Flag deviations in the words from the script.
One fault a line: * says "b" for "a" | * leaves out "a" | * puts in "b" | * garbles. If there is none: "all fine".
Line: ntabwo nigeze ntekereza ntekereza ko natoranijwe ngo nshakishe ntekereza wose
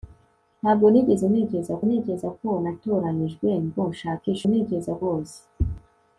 all fine